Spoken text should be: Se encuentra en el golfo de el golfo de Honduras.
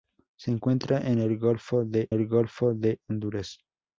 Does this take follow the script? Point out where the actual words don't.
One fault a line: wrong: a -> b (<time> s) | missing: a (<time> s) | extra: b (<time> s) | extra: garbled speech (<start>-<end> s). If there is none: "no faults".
no faults